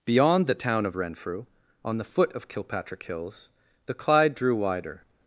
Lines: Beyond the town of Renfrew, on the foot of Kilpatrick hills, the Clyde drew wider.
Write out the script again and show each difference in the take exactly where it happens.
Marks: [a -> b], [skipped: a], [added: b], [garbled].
Beyond the town of Renfrew, on the foot of Kilpatrick hills, the Clyde drew wider.